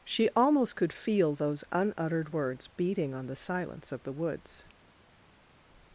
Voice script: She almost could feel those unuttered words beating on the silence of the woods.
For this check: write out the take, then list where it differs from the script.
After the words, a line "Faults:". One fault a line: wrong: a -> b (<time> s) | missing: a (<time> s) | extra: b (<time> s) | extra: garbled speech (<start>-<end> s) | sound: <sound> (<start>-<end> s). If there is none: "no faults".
She almost could feel those unuttered words beating on the silence of the woods.
Faults:
no faults